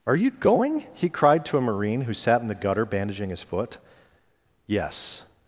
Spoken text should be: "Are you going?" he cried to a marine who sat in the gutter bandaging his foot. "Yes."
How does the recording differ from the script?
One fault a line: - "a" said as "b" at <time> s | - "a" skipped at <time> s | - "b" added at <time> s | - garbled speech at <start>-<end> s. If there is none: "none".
none